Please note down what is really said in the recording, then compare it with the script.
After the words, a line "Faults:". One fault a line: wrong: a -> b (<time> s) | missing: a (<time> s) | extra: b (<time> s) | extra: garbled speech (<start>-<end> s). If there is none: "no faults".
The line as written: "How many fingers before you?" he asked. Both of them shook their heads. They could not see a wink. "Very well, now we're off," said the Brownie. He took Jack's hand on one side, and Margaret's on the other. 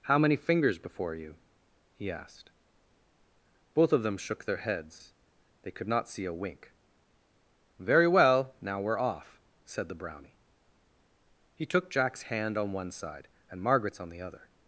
"How many fingers before you?" he asked. Both of them shook their heads. They could not see a wink. "Very well, now we're off," said the Brownie. He took Jack's hand on one side, and Margaret's on the other.
Faults:
no faults